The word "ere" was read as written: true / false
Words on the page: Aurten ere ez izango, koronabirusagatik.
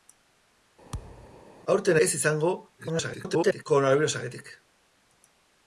false